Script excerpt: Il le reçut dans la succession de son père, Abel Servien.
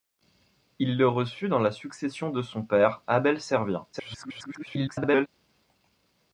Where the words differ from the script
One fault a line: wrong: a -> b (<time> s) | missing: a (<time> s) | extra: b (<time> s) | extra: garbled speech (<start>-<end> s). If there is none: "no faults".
extra: garbled speech (3.9-5.3 s)